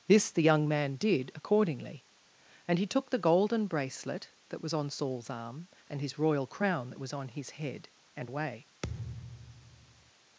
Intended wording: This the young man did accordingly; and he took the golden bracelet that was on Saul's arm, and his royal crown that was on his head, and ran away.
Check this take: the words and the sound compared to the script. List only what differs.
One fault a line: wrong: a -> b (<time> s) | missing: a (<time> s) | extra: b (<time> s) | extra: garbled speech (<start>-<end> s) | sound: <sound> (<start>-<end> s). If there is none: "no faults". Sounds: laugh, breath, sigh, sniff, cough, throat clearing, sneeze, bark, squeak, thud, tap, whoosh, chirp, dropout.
missing: ran (8.3 s)
sound: thud (8.8-10.1 s)